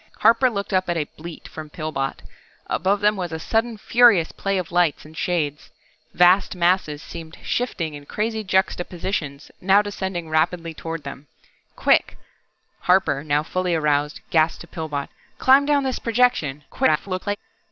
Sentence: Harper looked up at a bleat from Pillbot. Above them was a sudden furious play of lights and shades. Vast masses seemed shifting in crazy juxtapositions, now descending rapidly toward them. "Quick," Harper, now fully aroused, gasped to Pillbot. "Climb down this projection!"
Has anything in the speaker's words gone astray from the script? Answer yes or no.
yes